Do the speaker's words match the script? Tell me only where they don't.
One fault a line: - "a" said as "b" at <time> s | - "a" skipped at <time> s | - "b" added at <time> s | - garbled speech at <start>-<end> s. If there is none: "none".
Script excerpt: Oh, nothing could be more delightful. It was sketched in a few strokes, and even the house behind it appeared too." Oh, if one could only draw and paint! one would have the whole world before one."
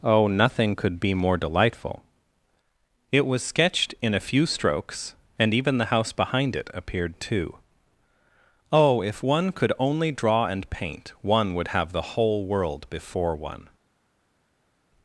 none